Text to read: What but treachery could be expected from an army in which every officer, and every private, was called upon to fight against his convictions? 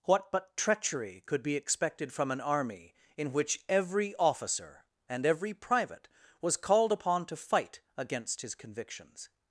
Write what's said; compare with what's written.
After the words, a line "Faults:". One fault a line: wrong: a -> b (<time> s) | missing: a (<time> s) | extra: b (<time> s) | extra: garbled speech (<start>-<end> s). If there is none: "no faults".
What but treachery could be expected from an army in which every officer, and every private, was called upon to fight against his convictions?
Faults:
no faults